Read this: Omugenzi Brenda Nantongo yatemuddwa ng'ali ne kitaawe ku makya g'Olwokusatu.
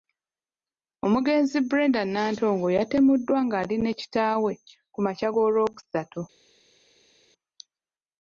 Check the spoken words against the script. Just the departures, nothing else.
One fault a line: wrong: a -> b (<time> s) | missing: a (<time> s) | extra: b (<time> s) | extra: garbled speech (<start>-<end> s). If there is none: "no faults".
no faults